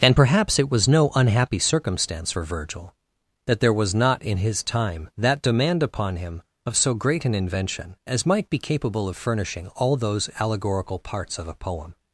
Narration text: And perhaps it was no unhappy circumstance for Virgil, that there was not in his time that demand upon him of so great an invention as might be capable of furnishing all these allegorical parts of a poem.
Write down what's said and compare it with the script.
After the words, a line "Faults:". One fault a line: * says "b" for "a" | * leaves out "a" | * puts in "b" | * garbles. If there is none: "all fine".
And perhaps it was no unhappy circumstance for Virgil, that there was not in his time that demand upon him of so great an invention as might be capable of furnishing all those allegorical parts of a poem.
Faults:
* says "those" for "these"